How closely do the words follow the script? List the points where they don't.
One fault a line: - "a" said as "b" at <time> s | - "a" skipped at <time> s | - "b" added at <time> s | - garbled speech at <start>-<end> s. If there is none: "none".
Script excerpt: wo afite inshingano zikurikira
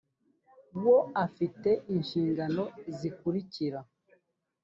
none